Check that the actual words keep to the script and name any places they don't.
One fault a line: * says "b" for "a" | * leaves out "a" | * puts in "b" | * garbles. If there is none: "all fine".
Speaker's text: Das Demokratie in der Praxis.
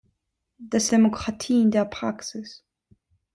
all fine